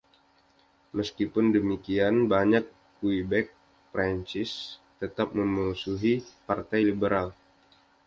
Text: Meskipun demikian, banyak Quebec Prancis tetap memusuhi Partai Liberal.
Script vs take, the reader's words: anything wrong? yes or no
no